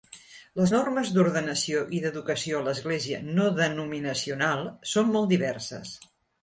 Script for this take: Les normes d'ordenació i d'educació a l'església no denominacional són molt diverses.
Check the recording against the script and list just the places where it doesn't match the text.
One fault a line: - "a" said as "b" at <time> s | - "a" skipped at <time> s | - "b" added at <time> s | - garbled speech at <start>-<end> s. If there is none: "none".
none